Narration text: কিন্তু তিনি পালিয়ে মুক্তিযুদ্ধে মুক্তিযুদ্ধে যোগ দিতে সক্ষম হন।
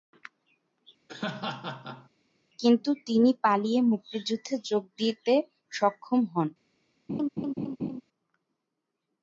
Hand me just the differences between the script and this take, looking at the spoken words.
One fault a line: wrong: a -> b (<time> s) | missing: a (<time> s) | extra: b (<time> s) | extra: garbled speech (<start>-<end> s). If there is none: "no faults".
missing: মুক্তিযুদ্ধে (4.5 s)